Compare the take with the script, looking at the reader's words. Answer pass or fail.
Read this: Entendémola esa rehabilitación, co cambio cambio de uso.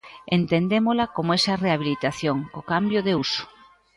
fail